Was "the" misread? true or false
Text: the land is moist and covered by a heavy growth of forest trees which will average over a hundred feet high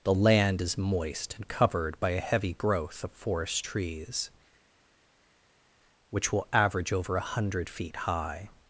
false